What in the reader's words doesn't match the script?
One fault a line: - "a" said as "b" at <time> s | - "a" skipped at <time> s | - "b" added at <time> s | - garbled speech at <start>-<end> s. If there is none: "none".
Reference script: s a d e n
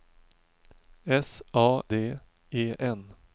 none